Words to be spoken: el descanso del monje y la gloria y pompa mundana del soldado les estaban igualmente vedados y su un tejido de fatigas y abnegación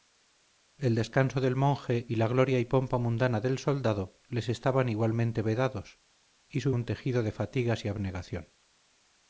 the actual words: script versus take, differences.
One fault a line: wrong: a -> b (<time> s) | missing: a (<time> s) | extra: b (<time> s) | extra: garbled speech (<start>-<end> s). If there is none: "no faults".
no faults